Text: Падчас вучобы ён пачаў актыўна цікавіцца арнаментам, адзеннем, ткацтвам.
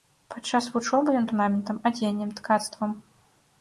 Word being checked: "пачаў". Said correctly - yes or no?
no